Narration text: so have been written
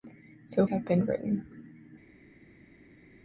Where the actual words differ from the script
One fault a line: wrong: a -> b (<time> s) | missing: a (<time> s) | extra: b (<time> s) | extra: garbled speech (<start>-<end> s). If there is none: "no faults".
no faults